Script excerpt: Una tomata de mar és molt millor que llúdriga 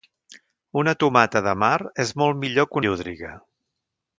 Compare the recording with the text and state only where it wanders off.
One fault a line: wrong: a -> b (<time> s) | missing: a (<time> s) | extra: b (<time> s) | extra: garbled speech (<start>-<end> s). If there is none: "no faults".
no faults